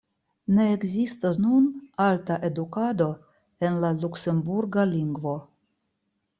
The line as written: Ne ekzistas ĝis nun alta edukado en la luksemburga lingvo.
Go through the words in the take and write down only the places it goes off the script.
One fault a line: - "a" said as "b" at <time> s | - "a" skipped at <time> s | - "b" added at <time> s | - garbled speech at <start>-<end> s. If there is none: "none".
- "ĝis" skipped at 1.4 s